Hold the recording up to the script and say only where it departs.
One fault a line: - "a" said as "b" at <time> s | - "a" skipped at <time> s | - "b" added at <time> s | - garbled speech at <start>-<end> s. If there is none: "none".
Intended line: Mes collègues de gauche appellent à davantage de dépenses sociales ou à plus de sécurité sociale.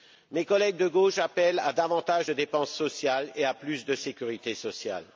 - "ou" said as "et" at 3.3 s